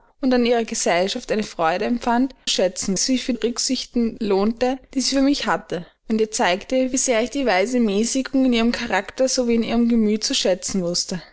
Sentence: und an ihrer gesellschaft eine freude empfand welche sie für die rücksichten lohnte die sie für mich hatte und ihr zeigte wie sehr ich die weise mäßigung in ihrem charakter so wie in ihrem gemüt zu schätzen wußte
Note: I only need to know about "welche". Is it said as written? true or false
false